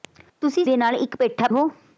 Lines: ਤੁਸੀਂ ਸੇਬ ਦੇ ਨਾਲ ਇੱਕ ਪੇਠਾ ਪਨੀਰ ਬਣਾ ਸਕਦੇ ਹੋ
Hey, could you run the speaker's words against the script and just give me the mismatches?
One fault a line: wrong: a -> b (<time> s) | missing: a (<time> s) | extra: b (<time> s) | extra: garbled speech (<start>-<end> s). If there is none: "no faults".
missing: ਸੇਬ (0.6 s)
missing: ਪਨੀਰ ਬਣਾ ਸਕਦੇ (1.5 s)